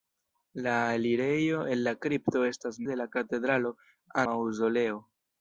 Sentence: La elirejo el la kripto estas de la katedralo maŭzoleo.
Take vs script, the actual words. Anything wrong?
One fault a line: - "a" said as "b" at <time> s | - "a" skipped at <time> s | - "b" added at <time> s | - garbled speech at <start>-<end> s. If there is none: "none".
none